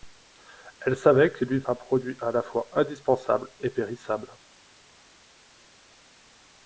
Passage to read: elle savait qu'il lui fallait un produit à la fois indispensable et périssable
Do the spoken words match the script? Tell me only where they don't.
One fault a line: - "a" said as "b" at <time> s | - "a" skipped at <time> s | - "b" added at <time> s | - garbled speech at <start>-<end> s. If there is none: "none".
- "fallait" skipped at 1.6 s